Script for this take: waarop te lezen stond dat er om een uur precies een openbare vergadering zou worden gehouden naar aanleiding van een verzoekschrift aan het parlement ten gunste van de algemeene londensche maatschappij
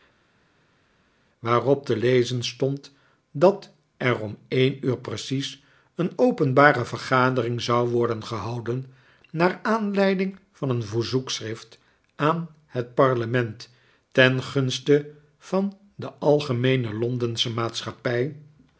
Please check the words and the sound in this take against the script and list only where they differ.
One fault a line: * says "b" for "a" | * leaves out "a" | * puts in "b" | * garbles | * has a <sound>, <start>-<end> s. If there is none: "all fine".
all fine